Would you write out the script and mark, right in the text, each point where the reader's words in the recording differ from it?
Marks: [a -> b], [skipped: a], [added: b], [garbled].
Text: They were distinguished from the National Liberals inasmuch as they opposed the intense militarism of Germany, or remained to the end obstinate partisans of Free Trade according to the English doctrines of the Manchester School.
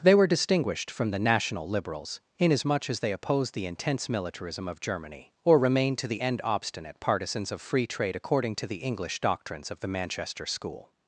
They were distinguished from the National Liberals inasmuch as they opposed the intense militarism of Germany, or remained to the end obstinate partisans of Free Trade according to the English doctrines of the Manchester School.